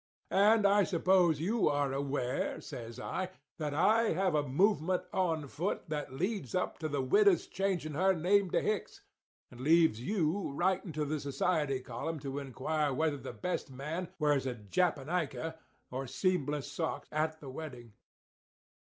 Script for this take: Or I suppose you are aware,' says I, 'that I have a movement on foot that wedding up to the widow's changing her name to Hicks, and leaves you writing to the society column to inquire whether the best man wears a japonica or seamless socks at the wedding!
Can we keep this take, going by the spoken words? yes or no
no